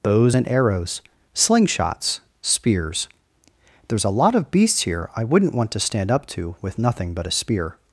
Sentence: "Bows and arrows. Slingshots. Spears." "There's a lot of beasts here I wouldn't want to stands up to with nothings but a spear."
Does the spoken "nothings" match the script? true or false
false